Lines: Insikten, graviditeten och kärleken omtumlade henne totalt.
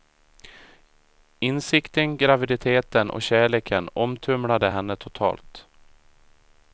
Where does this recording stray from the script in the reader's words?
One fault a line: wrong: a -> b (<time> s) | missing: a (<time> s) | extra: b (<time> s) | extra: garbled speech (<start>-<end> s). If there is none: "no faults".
no faults